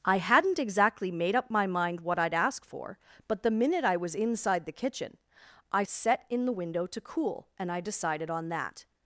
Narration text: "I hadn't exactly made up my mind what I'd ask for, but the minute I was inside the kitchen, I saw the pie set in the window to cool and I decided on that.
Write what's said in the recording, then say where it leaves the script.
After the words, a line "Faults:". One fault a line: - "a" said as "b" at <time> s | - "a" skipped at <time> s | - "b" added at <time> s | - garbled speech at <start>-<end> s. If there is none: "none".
"I hadn't exactly made up my mind what I'd ask for, but the minute I was inside the kitchen, I set in the window to cool and I decided on that.
Faults:
- "saw the pie" skipped at 5.8 s